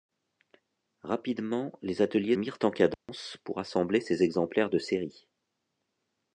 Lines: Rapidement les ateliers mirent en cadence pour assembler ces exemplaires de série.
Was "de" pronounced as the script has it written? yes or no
yes